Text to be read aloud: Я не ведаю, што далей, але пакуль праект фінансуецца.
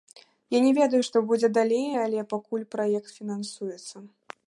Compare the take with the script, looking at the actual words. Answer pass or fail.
fail